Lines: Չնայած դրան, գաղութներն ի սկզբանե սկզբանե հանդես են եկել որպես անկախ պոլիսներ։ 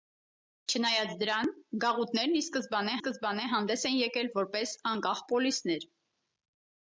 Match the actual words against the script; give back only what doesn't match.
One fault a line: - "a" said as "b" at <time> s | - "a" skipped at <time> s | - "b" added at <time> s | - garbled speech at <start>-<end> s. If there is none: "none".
none